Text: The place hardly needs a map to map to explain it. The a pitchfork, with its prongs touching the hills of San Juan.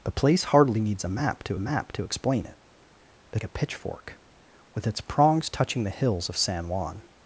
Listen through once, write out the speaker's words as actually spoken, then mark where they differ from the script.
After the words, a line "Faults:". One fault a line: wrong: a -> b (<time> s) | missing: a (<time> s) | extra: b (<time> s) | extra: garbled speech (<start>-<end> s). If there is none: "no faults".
The place hardly needs a map to map to explain it. The a pitchfork, with its prongs touching the hills of San Juan.
Faults:
no faults